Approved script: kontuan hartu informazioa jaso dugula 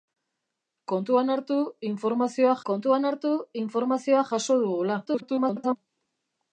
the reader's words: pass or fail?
fail